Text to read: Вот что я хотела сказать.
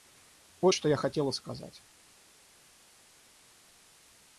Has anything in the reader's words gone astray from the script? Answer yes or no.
no